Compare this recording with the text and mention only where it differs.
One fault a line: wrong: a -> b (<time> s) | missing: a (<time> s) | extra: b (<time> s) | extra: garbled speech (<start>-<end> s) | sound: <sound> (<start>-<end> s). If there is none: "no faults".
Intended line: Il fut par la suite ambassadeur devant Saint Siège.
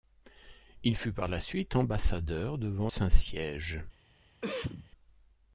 sound: cough (4.4-4.9 s)